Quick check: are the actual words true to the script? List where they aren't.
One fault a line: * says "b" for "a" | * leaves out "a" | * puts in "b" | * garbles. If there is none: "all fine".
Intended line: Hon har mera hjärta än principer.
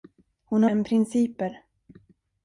* leaves out "mera hjärta"